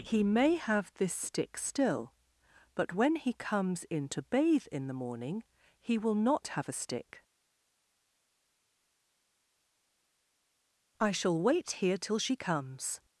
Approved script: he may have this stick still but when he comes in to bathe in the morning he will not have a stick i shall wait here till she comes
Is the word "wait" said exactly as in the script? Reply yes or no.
yes